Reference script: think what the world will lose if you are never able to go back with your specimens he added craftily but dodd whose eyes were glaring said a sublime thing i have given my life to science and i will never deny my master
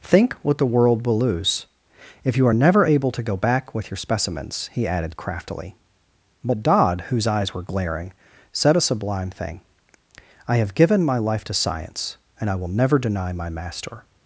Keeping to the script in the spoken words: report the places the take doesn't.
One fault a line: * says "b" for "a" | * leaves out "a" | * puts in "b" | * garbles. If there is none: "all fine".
all fine